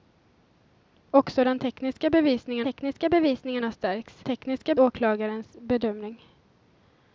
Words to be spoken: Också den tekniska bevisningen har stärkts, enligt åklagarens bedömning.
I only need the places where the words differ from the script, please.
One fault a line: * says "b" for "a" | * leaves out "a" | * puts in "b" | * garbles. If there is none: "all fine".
* puts in "tekniska bevisningen"
* says "tekniska" for "enligt"